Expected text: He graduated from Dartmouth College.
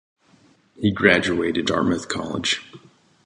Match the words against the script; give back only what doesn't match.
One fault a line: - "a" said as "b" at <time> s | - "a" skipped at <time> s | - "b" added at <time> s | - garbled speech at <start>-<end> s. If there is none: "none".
- "from" skipped at 1.7 s